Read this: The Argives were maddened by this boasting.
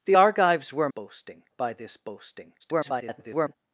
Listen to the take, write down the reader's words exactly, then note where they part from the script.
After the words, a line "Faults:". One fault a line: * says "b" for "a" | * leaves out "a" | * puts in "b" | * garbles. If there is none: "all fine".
The Argives were boasting by this boasting. [garbled]
Faults:
* says "boasting" for "maddened"
* garbles